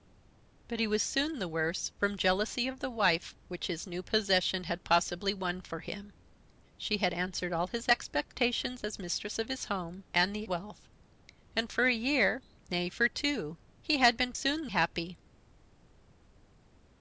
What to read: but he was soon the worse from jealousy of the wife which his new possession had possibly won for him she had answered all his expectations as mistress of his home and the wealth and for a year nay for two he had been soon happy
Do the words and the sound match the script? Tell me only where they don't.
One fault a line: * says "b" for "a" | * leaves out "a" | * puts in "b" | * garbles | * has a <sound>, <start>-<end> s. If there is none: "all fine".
all fine